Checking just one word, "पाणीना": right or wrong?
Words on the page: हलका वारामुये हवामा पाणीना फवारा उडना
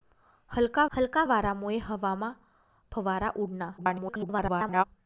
wrong